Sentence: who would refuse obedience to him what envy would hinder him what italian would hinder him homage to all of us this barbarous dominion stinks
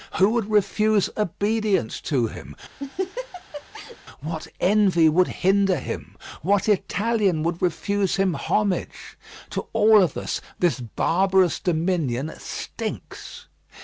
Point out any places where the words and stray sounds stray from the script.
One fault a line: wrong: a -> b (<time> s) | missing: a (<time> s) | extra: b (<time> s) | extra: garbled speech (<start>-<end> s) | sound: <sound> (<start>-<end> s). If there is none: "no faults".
sound: laugh (2.8-4.0 s)
wrong: hinder -> refuse (7.6 s)